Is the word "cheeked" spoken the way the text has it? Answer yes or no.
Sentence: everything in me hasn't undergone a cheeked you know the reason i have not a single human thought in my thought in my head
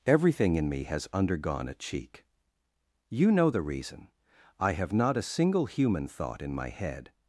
no